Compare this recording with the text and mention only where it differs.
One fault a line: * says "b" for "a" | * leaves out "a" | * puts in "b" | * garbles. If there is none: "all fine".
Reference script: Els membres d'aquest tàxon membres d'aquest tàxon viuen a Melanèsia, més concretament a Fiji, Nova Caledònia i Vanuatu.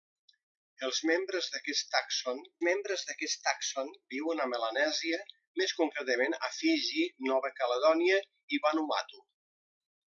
all fine